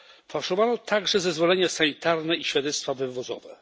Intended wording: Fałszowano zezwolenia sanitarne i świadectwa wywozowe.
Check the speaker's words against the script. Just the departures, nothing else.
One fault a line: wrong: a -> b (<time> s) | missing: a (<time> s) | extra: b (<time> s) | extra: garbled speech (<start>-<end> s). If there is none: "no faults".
extra: także (0.8 s)